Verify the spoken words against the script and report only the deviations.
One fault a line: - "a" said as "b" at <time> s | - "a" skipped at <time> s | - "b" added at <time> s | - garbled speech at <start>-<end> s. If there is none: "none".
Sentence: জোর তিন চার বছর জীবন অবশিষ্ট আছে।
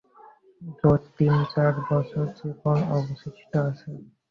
none